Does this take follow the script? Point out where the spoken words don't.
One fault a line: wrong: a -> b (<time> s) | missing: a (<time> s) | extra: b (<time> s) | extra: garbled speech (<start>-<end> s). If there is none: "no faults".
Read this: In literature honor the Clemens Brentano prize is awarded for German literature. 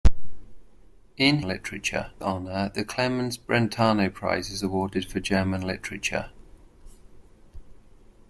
no faults